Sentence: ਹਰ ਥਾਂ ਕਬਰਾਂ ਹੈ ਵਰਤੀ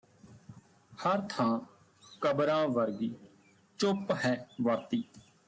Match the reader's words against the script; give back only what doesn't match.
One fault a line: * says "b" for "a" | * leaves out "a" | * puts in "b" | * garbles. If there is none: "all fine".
* puts in "ਵਰਗੀ ਚੁੱਪ"